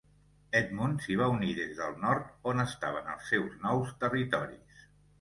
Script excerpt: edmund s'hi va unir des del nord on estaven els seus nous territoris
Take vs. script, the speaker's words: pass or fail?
pass